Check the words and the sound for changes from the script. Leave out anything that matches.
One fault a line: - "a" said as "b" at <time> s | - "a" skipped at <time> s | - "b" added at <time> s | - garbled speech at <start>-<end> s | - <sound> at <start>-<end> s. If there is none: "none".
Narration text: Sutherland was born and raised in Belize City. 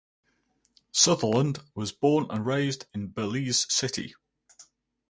none